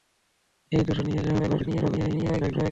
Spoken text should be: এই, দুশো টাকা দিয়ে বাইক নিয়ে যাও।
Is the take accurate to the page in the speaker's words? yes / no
no